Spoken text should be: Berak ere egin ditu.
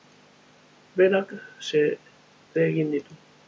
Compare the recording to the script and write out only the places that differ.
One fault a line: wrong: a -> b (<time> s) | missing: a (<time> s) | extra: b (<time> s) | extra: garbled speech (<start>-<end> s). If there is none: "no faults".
no faults